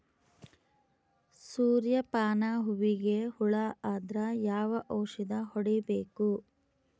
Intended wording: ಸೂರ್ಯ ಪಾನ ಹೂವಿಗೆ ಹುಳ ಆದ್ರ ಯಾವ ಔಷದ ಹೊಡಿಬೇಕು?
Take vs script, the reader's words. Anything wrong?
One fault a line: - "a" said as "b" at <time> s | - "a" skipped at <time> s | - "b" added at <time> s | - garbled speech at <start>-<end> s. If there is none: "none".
none